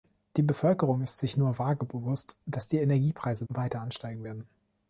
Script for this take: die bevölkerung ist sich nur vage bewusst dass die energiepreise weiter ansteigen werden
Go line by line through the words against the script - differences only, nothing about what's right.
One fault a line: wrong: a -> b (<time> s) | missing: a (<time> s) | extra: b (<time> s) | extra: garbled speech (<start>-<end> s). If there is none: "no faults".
no faults